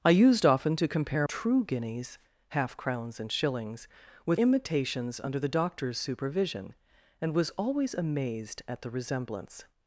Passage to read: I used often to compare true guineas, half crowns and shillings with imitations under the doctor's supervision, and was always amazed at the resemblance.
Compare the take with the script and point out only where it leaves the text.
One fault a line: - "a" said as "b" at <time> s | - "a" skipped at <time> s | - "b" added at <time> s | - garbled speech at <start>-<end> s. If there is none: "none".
none